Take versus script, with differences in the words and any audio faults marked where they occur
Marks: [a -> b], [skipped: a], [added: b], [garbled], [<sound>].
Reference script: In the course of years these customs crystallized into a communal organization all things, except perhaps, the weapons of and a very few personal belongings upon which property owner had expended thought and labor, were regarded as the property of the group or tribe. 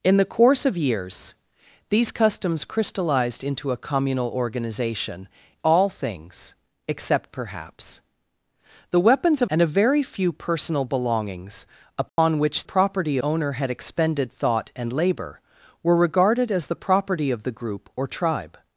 In the course of years these customs crystallized into a communal organization all things, except perhaps, the weapons of and a very few personal belongings upon [dropout] which property owner had expended thought and labor, were regarded as the property of the group or tribe.